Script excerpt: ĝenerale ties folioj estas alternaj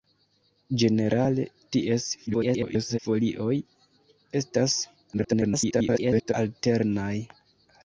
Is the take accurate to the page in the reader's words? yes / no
no